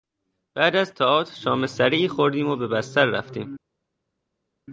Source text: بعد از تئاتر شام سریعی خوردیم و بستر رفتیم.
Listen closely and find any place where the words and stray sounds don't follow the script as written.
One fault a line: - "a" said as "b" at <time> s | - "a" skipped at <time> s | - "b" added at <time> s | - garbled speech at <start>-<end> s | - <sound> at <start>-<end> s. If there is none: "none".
- "به" added at 2.5 s